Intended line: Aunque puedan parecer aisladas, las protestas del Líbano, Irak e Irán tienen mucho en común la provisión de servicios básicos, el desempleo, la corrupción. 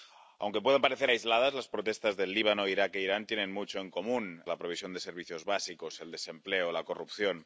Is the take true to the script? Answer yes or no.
yes